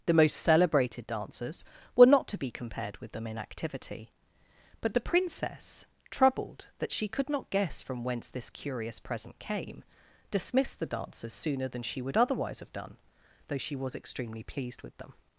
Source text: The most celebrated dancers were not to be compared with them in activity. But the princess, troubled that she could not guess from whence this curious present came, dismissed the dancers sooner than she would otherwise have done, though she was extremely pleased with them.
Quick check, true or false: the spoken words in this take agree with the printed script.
true